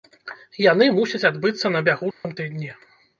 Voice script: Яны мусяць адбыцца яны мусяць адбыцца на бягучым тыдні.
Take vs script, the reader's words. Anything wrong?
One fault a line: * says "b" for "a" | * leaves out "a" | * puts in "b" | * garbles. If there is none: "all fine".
* leaves out "яны мусяць адбыцца"